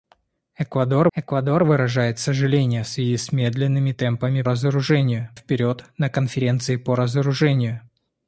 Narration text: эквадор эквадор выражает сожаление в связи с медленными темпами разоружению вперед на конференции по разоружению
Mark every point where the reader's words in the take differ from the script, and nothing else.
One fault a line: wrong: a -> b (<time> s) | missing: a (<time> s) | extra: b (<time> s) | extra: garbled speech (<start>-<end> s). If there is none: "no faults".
no faults